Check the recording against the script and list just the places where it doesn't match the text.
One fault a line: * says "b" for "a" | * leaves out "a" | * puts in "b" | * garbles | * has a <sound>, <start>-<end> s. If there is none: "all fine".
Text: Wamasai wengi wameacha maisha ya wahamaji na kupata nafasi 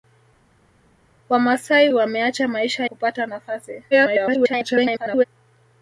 * leaves out "wengi"
* leaves out "ya wahamaji na"
* garbles